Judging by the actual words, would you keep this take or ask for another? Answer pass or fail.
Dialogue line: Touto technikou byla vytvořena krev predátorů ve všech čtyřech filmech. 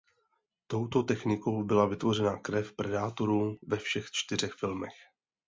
pass